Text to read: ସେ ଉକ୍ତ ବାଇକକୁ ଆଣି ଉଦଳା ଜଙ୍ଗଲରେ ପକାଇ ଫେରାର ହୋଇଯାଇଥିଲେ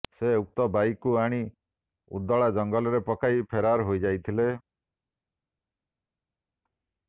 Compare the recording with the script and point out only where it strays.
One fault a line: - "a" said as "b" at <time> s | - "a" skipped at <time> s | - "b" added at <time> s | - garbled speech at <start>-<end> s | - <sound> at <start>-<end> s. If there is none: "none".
none